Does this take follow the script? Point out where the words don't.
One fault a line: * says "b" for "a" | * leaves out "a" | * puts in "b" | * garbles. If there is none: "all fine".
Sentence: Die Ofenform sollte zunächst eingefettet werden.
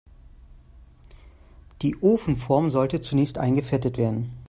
all fine